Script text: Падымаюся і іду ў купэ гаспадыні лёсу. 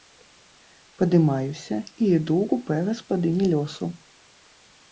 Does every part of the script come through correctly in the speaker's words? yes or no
yes